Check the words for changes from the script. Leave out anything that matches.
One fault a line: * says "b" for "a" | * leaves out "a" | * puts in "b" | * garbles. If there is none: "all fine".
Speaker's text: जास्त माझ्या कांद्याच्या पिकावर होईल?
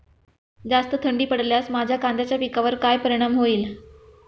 * puts in "थंडी पडल्यास"
* puts in "काय परिणाम"